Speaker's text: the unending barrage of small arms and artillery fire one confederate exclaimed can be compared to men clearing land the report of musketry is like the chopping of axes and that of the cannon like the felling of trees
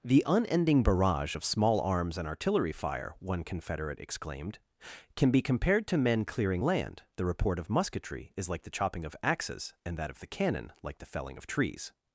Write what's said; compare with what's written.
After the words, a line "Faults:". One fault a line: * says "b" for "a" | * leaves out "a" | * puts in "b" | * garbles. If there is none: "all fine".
the unending barrage of small arms and artillery fire one confederate exclaimed can be compared to men clearing land the report of musketry is like the chopping of axes and that of the cannon like the felling of trees
Faults:
all fine